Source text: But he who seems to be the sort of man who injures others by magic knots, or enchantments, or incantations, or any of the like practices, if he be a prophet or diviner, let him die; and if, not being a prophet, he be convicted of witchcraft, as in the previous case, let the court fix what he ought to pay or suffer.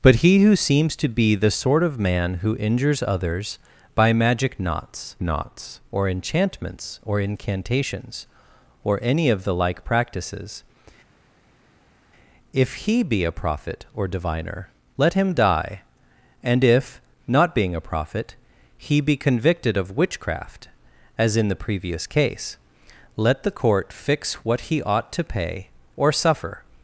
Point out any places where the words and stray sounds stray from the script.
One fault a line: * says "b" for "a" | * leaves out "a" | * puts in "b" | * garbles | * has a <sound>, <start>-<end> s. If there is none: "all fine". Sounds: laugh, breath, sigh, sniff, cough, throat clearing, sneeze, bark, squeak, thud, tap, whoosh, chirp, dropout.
* puts in "knots"